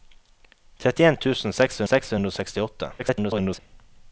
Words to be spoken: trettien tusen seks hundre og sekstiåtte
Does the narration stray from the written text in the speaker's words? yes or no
yes